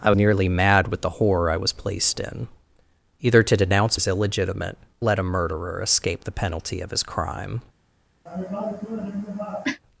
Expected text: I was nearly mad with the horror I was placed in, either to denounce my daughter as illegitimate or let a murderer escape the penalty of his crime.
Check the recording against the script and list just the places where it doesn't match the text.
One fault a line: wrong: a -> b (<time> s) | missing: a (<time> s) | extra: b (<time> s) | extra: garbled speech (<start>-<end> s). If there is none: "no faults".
missing: was (0.1 s)
missing: my daughter (4.0 s)
missing: or (4.8 s)